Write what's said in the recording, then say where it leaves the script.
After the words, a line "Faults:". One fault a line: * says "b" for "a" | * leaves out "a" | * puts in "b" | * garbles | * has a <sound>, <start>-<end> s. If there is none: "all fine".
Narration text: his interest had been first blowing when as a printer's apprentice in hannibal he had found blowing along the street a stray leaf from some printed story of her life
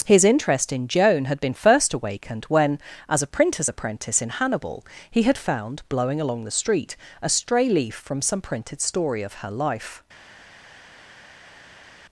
his interest in joan had been first awakened when as a printer's apprentice in hannibal he had found blowing along the street a stray leaf from some printed story of her life
Faults:
* puts in "in joan"
* says "awakened" for "blowing"